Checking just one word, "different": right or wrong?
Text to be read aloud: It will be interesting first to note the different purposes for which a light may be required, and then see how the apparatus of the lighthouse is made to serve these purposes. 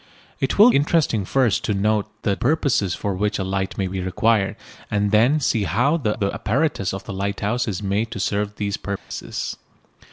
wrong